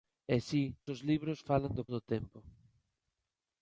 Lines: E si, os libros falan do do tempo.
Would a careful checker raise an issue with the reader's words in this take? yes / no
no